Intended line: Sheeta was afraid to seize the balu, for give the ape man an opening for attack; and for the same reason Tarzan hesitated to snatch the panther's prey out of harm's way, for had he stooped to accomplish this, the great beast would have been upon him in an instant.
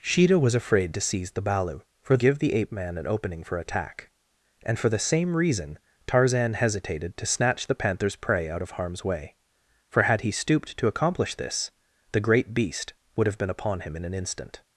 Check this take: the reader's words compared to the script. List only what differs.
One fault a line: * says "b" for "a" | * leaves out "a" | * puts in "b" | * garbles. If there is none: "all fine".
all fine